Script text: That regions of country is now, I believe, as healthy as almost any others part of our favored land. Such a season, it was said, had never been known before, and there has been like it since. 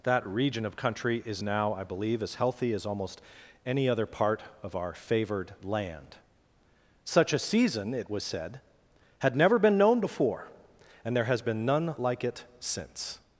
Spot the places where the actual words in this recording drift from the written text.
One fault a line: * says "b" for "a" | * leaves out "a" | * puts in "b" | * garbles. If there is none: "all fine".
* says "region" for "regions"
* says "other" for "others"
* puts in "none"